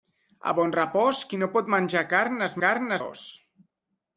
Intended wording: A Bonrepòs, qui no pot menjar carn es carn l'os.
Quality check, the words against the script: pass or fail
pass